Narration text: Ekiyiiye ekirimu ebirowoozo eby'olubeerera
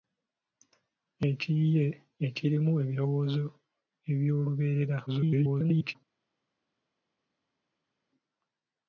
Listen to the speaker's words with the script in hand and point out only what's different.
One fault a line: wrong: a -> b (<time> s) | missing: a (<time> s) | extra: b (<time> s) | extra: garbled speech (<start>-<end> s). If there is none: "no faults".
extra: garbled speech (5.1-6.0 s)